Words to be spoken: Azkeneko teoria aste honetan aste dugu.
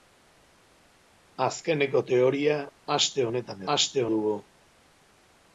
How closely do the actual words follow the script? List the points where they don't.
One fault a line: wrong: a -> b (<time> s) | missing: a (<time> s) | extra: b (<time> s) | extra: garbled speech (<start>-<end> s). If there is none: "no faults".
no faults